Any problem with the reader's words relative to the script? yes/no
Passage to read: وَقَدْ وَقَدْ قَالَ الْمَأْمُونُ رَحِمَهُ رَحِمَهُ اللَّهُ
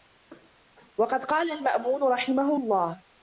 yes